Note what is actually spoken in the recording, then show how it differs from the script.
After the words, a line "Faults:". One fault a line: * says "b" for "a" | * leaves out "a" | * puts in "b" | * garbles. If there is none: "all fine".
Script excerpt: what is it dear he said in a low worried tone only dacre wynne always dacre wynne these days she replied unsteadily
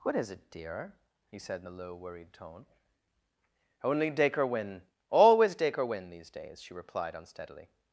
what is it dear he said in a low worried tone only dacre wynne always dacre wynne these days she replied unsteadily
Faults:
all fine